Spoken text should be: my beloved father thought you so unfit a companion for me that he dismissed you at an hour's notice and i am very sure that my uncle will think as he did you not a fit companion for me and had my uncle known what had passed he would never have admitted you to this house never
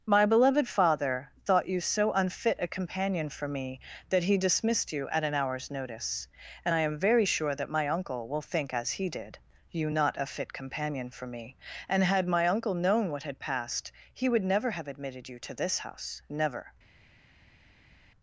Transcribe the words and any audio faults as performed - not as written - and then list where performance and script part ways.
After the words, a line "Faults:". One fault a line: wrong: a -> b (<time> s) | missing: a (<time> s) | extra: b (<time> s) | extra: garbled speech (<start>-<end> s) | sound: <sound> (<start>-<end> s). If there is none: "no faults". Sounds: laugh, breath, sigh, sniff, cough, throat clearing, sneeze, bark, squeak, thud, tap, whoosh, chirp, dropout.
my beloved father thought you so unfit a companion for me that he dismissed you at an hour's notice and i am very sure that my uncle will think as he did you not a fit companion for me and had my uncle known what had passed he would never have admitted you to this house never
Faults:
no faults